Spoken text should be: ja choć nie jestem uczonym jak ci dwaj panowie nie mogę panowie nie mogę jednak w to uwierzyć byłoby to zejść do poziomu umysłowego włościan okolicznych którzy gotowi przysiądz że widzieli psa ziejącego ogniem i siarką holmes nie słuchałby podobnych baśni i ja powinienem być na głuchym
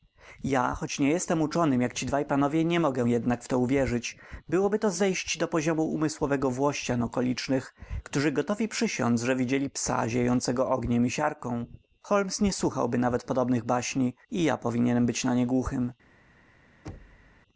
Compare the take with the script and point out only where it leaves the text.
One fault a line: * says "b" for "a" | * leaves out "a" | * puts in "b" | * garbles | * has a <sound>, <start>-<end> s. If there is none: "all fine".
* leaves out "panowie nie mogę"
* puts in "nawet"
* puts in "nie"
* has a thud, 16.8-17.4 s